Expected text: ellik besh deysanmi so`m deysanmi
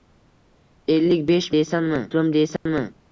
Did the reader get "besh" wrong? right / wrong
right